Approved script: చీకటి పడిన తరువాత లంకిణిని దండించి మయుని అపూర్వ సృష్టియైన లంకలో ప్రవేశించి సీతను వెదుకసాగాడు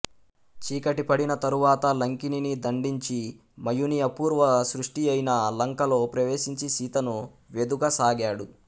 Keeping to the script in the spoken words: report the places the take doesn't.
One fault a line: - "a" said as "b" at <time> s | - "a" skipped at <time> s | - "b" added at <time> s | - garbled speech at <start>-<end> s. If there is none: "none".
none